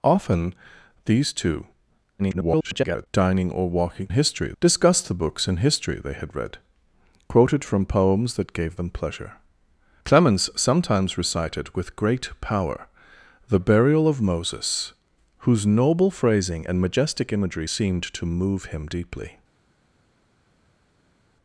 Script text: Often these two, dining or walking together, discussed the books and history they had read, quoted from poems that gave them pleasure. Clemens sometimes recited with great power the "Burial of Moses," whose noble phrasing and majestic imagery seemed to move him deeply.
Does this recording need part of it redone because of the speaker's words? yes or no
yes